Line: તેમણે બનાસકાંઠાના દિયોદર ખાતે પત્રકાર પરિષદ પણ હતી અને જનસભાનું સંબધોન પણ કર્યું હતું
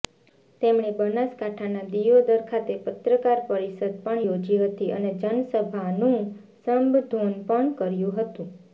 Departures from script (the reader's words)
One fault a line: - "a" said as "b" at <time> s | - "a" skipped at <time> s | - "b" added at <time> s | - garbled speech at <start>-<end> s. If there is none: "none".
- "યોજી" added at 4.2 s